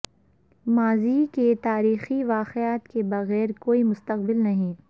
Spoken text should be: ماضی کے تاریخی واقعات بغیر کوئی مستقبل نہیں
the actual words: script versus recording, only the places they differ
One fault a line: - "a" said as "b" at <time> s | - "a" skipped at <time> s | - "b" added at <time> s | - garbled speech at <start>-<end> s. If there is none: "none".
- "کے" added at 2.9 s